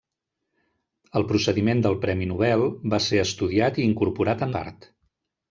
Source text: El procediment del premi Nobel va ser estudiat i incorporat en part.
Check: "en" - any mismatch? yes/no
yes